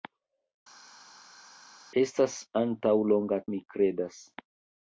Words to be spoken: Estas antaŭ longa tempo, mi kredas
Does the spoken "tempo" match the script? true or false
false